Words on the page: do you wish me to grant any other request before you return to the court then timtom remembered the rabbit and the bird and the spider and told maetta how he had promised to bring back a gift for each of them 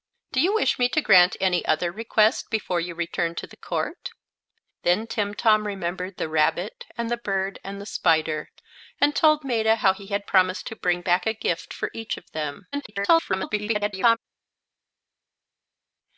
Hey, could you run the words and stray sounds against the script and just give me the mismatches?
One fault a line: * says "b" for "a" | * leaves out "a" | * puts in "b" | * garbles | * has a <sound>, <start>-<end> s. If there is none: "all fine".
* garbles